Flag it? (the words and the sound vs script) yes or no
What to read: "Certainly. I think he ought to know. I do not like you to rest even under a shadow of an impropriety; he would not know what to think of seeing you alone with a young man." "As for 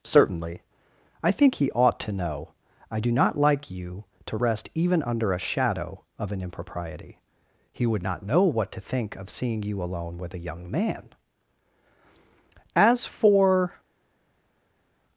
no